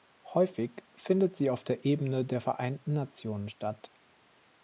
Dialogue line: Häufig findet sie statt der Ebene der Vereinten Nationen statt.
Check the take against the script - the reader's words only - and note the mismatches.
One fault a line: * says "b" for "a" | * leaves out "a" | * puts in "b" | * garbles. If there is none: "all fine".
* says "auf" for "statt"